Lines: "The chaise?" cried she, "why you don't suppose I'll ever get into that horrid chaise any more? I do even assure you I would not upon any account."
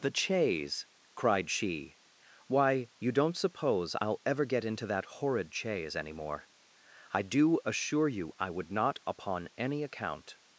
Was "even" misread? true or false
true